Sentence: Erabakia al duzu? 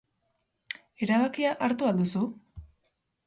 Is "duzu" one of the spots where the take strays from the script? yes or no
no